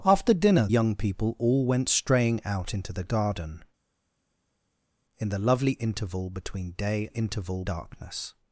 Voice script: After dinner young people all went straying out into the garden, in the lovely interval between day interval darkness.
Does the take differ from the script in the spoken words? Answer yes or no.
no